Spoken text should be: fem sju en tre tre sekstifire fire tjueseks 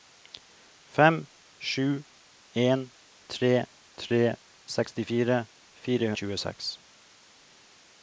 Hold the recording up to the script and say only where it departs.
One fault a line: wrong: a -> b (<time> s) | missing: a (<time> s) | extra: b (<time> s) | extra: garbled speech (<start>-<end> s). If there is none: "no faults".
no faults